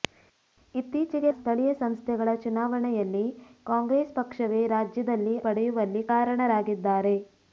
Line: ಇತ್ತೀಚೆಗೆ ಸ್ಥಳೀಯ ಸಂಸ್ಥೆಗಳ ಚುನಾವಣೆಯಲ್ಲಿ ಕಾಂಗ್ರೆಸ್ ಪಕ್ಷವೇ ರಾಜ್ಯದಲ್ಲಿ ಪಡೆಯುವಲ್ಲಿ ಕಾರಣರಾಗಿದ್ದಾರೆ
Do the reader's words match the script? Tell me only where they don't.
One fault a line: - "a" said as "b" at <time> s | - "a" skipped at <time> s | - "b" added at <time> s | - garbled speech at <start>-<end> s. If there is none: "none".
none